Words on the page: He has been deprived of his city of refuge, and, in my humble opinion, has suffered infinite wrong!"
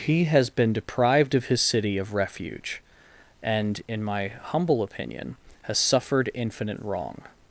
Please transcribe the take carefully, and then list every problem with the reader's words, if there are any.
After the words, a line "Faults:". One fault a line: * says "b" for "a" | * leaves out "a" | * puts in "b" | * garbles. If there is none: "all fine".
He has been deprived of his city of refuge, and, in my humble opinion, has suffered infinite wrong!"
Faults:
all fine